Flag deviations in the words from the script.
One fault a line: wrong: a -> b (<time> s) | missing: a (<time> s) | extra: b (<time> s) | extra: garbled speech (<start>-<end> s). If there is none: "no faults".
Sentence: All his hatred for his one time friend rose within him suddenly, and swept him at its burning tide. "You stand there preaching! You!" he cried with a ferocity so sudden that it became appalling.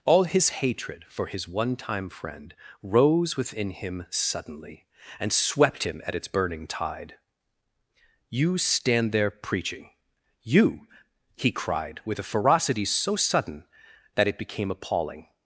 no faults